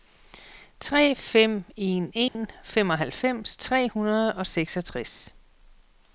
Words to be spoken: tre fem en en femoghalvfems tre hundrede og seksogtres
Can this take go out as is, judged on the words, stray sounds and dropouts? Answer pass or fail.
fail